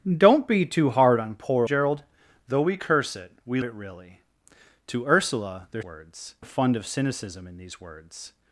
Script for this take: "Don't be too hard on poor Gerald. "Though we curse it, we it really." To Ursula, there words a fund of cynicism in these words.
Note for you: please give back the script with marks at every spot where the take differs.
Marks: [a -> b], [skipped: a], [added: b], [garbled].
"Don't be too hard on poor Gerald. "Though we curse it, we it really." To Ursula, there words a fund of cynicism in these words.